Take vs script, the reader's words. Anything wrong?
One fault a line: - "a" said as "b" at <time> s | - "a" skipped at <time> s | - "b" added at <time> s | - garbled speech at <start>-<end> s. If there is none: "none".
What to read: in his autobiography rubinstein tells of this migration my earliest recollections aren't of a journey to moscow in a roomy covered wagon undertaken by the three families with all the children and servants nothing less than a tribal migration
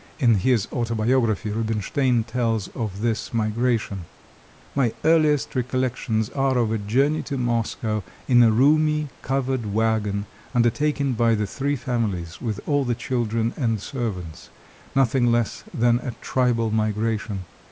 - "aren't" said as "are" at 6.3 s